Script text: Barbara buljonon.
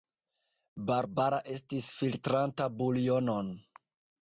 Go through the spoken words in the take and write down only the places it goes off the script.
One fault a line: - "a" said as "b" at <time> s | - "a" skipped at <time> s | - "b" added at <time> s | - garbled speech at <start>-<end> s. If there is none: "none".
- "estis filtranta" added at 1.6 s